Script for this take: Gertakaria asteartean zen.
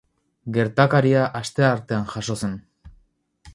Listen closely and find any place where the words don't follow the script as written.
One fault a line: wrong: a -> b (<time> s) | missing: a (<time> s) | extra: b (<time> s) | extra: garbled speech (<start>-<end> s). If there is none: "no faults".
extra: jazo (2.1 s)